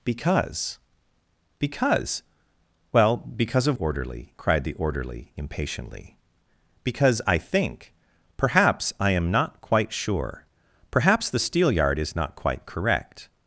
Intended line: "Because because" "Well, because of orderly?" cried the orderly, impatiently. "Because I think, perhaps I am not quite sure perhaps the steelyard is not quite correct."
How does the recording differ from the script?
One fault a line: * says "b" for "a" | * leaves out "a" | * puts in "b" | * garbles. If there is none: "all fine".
all fine